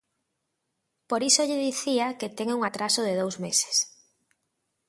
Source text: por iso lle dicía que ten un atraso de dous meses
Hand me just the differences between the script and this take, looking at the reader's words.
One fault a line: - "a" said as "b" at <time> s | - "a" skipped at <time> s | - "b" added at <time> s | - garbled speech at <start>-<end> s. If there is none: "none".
none